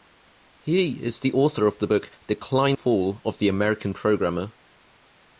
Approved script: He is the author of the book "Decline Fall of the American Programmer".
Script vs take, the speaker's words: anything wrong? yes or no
no